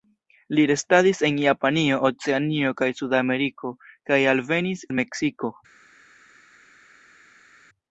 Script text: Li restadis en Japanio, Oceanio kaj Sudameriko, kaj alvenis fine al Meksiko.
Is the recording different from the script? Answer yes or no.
yes